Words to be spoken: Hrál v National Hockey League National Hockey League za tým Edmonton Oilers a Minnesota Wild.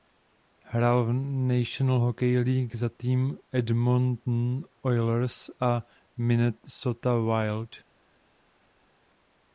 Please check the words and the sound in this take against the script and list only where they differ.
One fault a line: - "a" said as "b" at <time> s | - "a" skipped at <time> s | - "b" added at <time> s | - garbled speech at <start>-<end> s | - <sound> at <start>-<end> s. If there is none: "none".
- "National Hockey League" skipped at 2.8 s